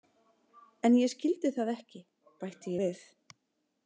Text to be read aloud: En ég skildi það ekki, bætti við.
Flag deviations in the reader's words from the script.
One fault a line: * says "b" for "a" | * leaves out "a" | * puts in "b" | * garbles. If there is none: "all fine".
all fine